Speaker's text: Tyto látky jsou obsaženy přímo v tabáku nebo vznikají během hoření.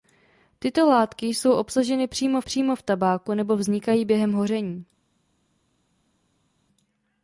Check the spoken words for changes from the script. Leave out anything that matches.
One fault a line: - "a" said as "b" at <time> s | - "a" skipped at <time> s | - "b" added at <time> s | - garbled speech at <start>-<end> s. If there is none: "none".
- "přímo" added at 2.4 s